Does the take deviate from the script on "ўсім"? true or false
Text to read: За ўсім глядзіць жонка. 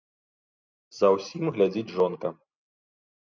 false